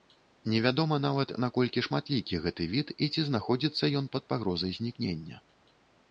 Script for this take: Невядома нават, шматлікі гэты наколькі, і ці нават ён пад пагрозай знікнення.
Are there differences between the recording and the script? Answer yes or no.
yes